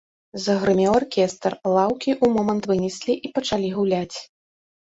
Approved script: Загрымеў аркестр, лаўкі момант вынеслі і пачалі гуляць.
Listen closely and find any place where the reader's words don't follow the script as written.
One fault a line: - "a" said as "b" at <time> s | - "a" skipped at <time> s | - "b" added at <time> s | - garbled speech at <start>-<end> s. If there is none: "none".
- "ў" added at 2.2 s